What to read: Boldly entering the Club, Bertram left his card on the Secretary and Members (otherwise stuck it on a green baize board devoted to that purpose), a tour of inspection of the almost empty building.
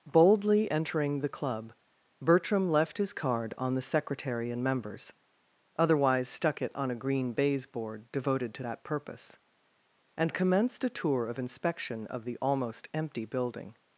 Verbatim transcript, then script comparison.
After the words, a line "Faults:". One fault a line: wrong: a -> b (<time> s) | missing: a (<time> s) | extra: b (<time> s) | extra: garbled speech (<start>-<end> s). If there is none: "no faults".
Boldly entering the Club, Bertram left his card on the Secretary and Members (otherwise stuck it on a green baize board devoted to that purpose), and commenced a tour of inspection of the almost empty building.
Faults:
extra: and commenced (10.2 s)